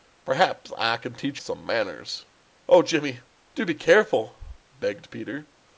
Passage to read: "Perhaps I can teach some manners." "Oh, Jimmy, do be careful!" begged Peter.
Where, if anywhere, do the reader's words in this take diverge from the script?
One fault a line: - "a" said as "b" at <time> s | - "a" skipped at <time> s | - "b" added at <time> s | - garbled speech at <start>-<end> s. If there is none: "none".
none